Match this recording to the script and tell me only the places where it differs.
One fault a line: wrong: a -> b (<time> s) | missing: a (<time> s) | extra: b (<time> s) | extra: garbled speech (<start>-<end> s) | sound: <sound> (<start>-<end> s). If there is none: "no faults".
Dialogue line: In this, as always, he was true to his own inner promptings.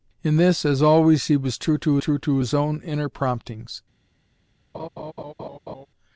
extra: true to (2.0 s)
sound: laugh (4.7-5.9 s)